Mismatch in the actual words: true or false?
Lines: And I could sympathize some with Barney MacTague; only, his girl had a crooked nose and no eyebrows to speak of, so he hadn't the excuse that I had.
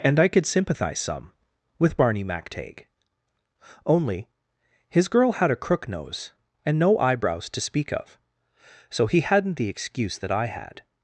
true